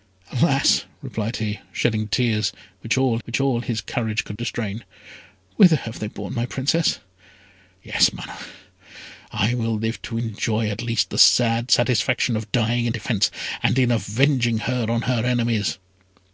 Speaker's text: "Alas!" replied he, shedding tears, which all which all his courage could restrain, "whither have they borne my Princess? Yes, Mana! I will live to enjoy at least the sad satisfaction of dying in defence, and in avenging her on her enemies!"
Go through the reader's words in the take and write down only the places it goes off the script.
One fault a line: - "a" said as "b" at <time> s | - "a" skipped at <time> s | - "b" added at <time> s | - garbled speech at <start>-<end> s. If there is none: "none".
none